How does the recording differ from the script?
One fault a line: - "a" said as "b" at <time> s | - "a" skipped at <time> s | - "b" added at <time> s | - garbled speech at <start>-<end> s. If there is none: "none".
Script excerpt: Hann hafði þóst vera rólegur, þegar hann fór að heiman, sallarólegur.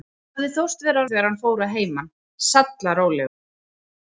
- "rólegur" skipped at 1.0 s